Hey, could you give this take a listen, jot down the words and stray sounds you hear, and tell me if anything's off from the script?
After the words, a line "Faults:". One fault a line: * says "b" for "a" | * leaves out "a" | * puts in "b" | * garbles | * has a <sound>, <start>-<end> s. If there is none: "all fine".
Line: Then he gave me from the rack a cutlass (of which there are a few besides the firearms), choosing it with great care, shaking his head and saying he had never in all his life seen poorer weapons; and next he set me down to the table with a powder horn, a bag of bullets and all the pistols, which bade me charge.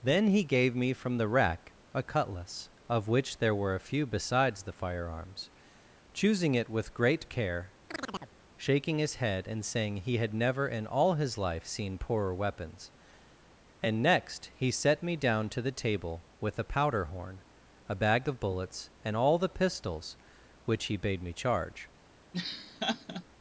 Then he gave me from the rack a cutlass (of which there were a few besides the firearms), choosing it with great care, shaking his head and saying he had never in all his life seen poorer weapons; and next he set me down to the table with a powder horn, a bag of bullets and all the pistols, which he bade me charge.
Faults:
* says "were" for "are"
* has a chirp, 7.9-8.4 s
* puts in "he"
* has a laugh, 22.3-23.2 s